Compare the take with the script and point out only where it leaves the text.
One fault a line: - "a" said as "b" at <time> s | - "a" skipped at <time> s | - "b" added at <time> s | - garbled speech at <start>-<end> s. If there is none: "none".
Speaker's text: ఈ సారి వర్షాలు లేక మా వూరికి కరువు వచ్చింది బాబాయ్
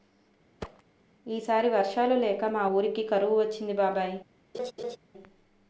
none